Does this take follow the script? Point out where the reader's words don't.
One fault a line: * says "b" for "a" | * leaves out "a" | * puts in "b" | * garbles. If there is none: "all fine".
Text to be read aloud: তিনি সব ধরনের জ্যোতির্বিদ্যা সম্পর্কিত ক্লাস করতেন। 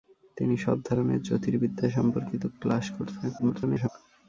* garbles